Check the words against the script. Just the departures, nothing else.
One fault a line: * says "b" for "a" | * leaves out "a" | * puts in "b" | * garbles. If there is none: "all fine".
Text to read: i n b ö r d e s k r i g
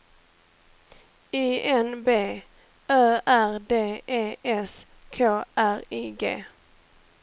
all fine